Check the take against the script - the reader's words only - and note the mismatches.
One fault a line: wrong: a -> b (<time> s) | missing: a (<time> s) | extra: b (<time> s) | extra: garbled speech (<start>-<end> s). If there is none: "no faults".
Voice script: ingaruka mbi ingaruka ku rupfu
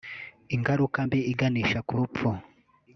wrong: ingaruka -> iganisha (1.3 s)